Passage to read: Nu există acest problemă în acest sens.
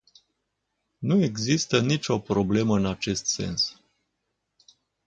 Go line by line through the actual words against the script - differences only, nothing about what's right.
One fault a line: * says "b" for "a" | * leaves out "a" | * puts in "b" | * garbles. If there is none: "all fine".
* says "nicio" for "acest"